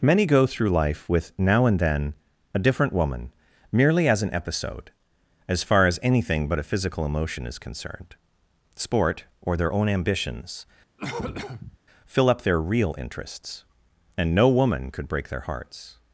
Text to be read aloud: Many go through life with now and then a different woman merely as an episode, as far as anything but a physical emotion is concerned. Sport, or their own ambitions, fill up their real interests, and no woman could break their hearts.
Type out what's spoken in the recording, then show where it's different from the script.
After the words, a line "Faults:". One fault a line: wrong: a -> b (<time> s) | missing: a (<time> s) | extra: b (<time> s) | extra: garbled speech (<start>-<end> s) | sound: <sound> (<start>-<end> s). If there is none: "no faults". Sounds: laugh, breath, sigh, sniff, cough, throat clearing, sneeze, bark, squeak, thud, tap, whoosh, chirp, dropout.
Many go through life with now and then a different woman merely as an episode, as far as anything but a physical emotion is concerned. Sport, or their own ambitions, fill up their real interests, and no woman could break their hearts.
Faults:
sound: cough (11.0-11.8 s)